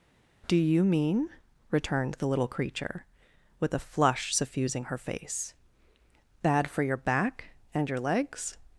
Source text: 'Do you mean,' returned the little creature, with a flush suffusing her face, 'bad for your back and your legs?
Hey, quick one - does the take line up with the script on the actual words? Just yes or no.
yes